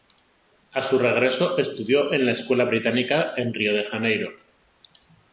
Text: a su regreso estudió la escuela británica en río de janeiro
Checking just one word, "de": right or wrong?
right